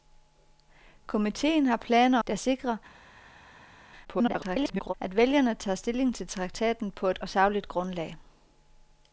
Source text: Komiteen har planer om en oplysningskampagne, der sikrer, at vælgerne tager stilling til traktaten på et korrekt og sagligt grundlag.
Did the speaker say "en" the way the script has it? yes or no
no